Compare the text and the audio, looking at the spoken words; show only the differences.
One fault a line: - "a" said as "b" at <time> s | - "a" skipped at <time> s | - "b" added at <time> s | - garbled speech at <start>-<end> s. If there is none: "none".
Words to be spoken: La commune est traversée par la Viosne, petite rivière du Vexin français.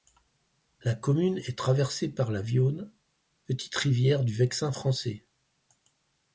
none